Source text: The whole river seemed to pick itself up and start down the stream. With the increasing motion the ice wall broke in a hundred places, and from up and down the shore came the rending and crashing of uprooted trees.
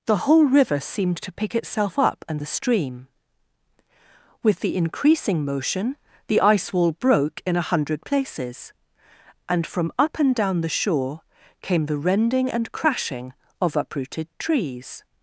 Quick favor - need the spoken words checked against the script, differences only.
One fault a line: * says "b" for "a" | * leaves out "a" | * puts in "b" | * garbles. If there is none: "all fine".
* leaves out "start down"